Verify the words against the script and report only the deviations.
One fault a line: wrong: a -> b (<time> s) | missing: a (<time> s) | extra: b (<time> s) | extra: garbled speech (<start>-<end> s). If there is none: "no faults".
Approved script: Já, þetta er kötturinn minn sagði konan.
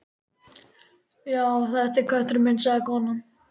no faults